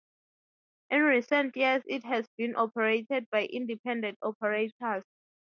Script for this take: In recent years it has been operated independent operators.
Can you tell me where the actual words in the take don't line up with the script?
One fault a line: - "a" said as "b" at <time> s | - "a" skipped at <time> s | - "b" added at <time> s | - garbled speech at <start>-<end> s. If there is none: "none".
- "by" added at 3.3 s